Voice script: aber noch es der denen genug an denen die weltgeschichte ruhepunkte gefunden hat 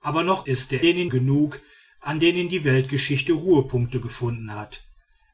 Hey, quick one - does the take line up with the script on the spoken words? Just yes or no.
yes